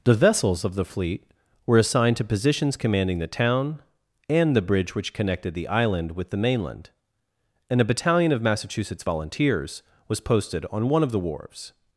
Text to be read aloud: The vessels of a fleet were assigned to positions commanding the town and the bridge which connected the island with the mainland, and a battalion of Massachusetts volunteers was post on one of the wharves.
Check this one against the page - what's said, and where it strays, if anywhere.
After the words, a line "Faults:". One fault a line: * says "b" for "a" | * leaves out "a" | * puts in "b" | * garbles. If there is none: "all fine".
The vessels of the fleet were assigned to positions commanding the town and the bridge which connected the island with the mainland, and a battalion of Massachusetts volunteers was posted on one of the wharves.
Faults:
* says "the" for "a"
* says "posted" for "post"